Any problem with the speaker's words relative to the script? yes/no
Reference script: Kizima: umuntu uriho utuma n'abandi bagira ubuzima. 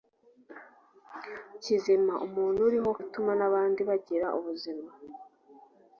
no